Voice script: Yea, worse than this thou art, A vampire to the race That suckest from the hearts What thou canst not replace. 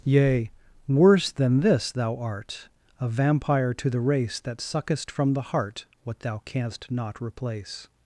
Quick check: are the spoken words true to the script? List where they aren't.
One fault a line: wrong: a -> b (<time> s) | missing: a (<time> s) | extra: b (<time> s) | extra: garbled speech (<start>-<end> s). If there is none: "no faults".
wrong: hearts -> heart (5.4 s)